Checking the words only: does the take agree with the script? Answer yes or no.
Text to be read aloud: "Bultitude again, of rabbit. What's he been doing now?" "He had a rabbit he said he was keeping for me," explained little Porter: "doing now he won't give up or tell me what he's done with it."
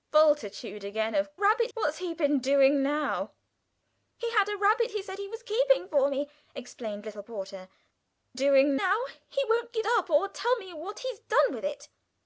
yes